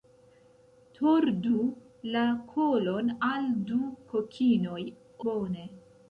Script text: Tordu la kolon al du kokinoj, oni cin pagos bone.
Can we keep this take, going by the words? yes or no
no